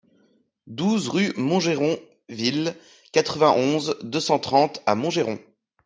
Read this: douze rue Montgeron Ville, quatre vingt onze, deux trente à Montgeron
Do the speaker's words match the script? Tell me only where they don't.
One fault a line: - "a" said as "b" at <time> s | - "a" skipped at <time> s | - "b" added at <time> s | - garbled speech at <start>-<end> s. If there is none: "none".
- "cent" added at 4.2 s